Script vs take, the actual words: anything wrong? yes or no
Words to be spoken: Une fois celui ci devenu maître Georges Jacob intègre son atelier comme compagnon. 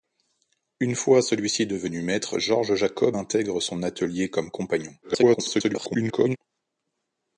yes